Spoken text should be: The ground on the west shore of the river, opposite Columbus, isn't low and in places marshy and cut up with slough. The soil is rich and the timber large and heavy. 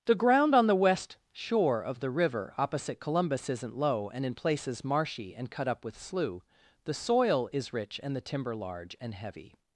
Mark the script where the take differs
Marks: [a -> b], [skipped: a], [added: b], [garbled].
The ground on the west shore of the river, opposite Columbus, isn't low and in places marshy and cut up with slough. The soil is rich and the timber large and heavy.